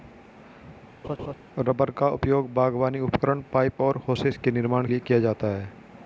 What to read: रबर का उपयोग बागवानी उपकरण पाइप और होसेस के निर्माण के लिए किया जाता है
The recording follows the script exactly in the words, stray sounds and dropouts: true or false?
false